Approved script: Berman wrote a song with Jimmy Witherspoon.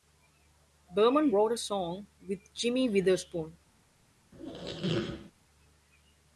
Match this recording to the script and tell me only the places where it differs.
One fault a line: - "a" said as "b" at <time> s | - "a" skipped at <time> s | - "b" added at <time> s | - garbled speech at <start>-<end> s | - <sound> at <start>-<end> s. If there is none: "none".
- squeak at 4.3-5.3 s